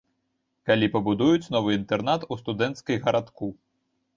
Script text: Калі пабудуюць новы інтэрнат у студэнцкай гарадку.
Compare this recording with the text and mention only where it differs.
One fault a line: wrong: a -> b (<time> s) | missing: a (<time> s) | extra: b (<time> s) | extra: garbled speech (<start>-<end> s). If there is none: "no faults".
no faults